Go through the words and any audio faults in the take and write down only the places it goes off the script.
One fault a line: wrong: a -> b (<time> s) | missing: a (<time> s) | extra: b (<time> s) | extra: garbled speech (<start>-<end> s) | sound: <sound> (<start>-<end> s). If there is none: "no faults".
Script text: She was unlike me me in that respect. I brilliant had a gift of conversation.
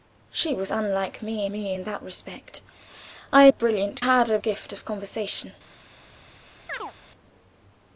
sound: chirp (6.7-6.9 s)